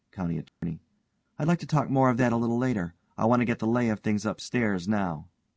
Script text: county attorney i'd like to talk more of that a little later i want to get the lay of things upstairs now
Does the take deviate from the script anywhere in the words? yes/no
no